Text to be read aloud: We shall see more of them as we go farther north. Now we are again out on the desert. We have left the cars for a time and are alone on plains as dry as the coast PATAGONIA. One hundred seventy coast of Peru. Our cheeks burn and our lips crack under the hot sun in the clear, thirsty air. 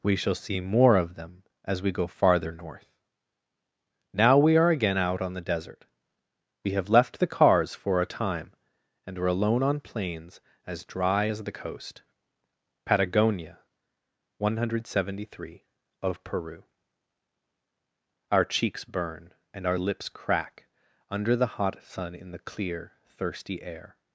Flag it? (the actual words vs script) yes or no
yes